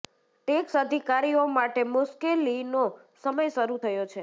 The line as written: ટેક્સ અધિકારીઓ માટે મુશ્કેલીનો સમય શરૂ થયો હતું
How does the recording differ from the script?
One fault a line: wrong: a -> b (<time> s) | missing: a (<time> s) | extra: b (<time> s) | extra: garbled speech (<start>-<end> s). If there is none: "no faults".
wrong: હતું -> છે (4.0 s)